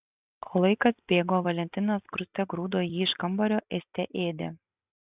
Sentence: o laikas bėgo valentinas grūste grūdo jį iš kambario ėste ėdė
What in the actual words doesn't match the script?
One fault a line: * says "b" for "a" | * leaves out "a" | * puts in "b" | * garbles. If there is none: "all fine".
all fine